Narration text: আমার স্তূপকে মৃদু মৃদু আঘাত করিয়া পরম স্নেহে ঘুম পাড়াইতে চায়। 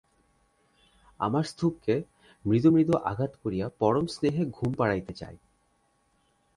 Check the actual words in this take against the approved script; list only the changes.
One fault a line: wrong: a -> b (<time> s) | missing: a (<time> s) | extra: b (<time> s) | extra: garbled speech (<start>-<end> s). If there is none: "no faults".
no faults